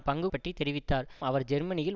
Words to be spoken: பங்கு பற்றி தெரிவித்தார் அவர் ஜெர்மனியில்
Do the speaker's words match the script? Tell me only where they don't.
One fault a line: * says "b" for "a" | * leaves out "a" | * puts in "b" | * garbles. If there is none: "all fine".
all fine